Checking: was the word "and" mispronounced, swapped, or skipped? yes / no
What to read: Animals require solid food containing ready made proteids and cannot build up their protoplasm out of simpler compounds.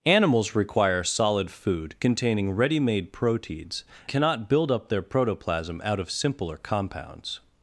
yes